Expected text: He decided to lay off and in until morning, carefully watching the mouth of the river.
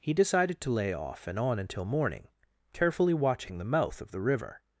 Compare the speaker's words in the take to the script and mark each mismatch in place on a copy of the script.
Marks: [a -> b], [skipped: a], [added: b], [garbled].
He decided to lay off and [in -> on] until morning, carefully watching the mouth of the river.